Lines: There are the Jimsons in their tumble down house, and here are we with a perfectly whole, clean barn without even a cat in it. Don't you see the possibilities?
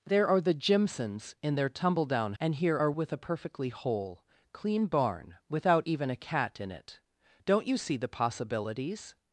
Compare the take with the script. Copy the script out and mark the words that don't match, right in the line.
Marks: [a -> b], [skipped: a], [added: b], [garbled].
There are the Jimsons in their tumble down [skipped: house,] and here are [skipped: we] with a perfectly whole, clean barn without even a cat in it. Don't you see the possibilities?